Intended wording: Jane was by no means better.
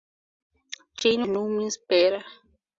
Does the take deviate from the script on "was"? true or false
true